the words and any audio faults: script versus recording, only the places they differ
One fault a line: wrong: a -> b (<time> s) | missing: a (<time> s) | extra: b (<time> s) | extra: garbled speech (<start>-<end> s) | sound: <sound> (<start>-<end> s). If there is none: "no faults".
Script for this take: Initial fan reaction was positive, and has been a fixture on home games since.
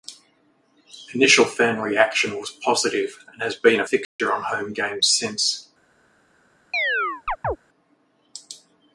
sound: dropout (4.0-4.2 s)
sound: chirp (6.7-7.6 s)